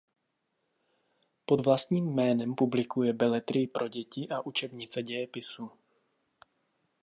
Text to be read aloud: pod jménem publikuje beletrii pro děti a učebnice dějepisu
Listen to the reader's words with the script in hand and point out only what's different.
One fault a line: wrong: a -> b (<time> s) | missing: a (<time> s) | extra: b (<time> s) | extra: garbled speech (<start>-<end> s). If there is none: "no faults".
extra: vlastním (1.6 s)